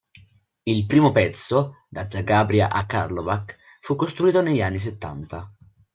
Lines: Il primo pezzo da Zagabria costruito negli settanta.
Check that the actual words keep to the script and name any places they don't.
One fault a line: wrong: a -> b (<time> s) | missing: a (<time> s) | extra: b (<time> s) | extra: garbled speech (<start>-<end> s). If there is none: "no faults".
extra: a Karlovac fu (2.7 s)
extra: anni (4.6 s)